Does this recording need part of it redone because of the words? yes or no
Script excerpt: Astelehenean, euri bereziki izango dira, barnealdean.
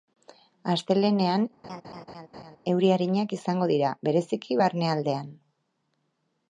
yes